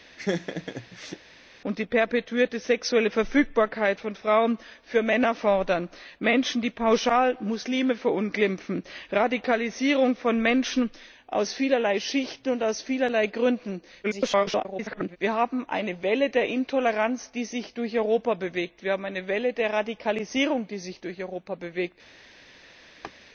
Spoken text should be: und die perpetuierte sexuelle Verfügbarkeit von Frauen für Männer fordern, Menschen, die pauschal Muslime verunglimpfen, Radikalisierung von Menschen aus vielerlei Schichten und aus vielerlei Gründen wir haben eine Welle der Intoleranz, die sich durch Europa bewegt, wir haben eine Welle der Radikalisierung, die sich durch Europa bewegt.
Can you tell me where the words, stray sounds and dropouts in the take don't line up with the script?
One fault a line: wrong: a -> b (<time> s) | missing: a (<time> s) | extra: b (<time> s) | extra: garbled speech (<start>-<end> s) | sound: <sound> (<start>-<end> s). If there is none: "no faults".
sound: laugh (0.2-1.2 s)
extra: garbled speech (14.0-15.2 s)
sound: laugh (23.0-23.1 s)